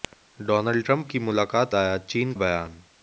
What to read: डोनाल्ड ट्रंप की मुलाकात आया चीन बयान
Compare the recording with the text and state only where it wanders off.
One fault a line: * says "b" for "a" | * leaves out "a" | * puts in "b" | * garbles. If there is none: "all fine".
all fine